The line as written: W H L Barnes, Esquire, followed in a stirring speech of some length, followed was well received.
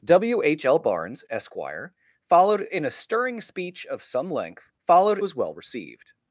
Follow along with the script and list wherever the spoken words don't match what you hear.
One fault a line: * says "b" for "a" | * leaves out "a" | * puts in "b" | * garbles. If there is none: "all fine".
all fine